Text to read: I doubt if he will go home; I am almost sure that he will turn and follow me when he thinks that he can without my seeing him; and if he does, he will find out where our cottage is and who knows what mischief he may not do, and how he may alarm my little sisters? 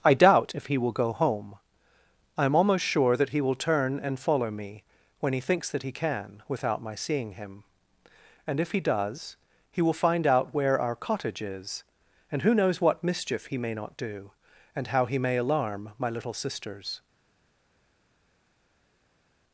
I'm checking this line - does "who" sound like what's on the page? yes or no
yes